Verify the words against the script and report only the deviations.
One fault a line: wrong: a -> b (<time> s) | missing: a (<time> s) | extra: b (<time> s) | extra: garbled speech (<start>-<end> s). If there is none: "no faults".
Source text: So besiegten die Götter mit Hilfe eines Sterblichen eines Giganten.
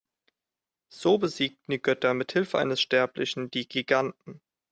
wrong: eines -> die (3.5 s)